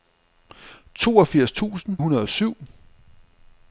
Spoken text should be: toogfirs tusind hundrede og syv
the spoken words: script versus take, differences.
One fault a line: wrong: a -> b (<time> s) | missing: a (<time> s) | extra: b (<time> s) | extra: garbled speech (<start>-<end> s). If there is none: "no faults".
no faults